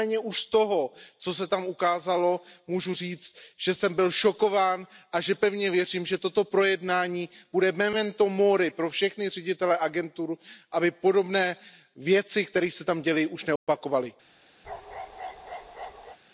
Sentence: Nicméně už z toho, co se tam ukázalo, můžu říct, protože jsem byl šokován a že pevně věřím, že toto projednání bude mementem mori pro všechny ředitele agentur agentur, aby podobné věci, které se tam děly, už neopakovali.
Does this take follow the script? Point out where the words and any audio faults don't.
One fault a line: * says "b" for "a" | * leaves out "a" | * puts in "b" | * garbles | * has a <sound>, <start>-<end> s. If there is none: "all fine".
* says "že" for "protože"
* leaves out "agentur"
* has a dropout, 13.6-13.7 s
* has a bark, 14.6-16.2 s